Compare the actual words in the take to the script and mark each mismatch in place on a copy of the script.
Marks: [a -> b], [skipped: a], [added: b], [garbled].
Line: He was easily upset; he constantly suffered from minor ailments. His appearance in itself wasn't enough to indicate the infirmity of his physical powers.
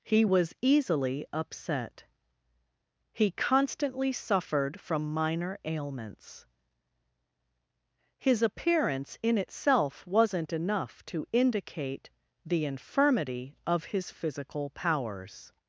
He was easily upset; he constantly suffered from minor ailments. His appearance in itself wasn't enough to indicate the infirmity of his physical powers.